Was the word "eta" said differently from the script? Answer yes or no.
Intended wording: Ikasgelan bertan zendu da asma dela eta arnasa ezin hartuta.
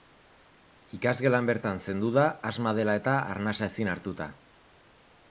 no